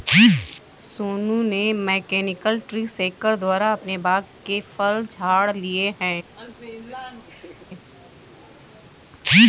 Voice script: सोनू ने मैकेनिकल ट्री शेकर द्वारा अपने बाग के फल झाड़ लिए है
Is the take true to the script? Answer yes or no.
yes